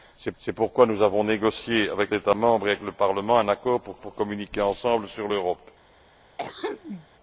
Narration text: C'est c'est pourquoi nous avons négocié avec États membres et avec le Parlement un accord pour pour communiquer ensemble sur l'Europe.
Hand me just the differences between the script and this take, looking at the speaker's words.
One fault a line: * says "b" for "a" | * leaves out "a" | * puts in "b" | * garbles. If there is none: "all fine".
all fine